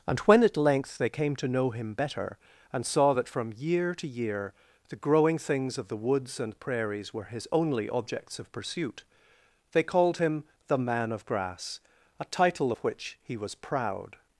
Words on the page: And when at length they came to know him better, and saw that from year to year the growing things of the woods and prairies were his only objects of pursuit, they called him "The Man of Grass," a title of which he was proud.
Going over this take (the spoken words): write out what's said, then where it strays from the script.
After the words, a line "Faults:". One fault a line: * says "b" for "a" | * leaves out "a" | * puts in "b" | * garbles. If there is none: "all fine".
And when at length they came to know him better, and saw that from year to year the growing things of the woods and prairies were his only objects of pursuit, they called him "The Man of Grass," a title of which he was proud.
Faults:
all fine